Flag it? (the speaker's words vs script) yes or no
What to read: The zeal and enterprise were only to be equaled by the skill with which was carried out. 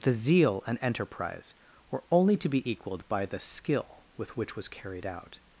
no